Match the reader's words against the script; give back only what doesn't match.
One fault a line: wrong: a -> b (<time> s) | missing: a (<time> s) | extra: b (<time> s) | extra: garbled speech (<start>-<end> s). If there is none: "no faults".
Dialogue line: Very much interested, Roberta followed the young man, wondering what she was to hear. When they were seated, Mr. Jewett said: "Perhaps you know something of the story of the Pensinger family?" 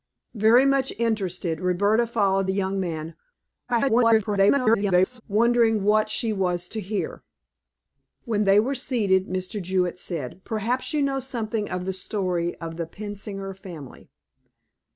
extra: garbled speech (3.7-5.2 s)